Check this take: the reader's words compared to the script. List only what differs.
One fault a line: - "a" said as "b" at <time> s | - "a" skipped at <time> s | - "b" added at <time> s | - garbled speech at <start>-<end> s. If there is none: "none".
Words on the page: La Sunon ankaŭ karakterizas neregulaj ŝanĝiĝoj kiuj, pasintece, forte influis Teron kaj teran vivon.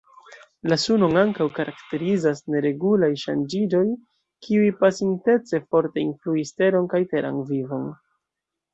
none